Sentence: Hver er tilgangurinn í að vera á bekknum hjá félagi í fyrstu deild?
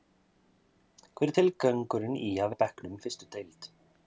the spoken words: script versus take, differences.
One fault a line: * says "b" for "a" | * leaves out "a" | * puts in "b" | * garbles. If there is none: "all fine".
* leaves out "vera"
* leaves out "hjá félagi"